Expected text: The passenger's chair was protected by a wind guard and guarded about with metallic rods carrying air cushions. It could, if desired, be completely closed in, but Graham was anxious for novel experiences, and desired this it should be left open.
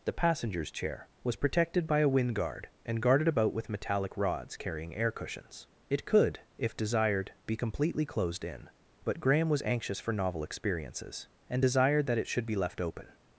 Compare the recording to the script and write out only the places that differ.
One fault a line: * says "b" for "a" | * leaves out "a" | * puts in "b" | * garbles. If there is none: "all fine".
* says "that" for "this"